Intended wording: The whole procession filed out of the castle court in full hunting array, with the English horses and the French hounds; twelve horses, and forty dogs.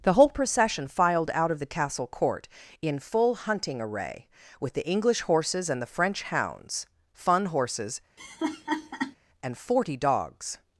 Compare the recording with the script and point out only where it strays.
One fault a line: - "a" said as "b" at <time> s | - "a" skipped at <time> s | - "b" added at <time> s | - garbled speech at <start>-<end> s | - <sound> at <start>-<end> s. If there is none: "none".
- "twelve" said as "fun" at 7.1 s
- laugh at 8.2-9.2 s